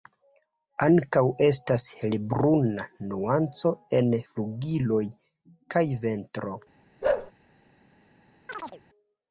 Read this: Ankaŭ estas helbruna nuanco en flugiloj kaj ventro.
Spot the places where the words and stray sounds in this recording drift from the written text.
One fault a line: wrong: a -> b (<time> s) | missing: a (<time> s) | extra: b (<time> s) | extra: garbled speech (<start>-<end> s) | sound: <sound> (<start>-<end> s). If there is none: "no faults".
sound: bark (7.0-7.3 s)
sound: chirp (8.5-8.8 s)